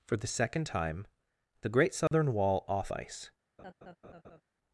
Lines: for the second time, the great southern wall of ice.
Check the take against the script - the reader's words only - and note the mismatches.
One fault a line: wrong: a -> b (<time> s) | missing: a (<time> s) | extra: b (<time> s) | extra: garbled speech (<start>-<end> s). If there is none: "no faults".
wrong: of -> off (2.7 s)